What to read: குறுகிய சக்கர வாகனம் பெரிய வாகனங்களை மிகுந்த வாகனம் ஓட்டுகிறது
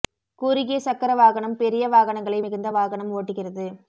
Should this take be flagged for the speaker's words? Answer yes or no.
no